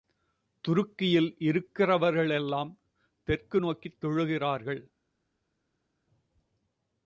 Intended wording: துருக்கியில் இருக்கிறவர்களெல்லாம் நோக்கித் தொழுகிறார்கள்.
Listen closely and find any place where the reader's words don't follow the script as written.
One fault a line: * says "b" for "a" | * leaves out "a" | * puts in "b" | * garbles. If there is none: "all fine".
* puts in "தெற்கு"